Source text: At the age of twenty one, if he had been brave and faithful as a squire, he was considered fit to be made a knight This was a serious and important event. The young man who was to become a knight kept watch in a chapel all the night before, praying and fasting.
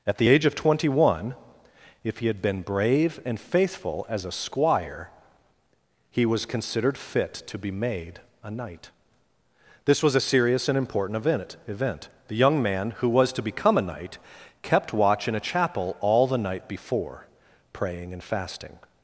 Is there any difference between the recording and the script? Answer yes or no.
yes